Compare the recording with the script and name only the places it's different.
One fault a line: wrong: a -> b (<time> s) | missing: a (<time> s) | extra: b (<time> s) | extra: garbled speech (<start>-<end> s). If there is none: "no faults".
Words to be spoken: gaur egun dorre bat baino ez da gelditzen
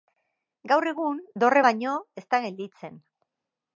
missing: bat (1.7 s)